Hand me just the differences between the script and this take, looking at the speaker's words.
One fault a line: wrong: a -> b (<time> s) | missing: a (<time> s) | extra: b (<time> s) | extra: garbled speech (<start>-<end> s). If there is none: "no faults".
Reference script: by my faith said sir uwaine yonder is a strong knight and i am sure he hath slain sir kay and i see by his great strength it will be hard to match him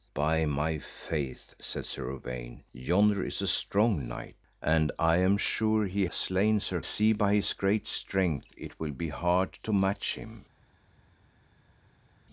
missing: hath (6.1 s)
missing: kay and i (6.8 s)